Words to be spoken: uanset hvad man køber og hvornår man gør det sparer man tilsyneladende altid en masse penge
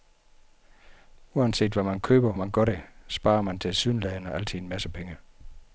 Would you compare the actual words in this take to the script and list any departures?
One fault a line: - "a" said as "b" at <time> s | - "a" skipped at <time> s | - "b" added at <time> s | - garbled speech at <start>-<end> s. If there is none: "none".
- "og hvornår" skipped at 2.3 s